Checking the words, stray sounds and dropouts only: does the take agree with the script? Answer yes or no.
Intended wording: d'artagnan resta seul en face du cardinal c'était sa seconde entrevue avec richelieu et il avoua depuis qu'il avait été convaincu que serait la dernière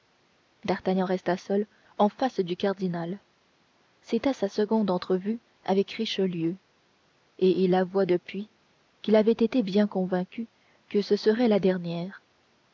no